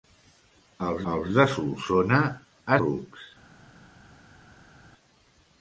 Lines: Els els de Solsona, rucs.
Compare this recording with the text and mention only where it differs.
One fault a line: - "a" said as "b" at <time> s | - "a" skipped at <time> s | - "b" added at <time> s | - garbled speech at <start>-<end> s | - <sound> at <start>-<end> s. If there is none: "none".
none